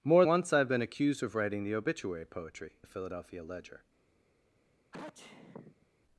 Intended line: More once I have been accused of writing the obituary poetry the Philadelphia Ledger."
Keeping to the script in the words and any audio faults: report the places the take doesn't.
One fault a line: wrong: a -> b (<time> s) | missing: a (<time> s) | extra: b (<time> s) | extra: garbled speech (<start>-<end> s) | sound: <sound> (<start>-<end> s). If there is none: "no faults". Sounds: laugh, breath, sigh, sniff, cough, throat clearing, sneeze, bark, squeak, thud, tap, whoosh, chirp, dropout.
sound: sneeze (4.9-5.9 s)